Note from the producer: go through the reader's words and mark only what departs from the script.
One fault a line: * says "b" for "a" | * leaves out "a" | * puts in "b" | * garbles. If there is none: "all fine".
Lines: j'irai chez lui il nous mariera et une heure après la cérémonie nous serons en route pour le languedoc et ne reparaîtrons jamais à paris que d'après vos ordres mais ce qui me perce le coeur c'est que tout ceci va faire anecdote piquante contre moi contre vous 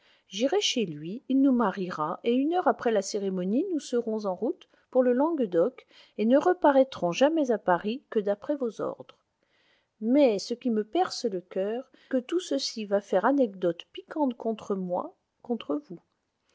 * leaves out "c'est"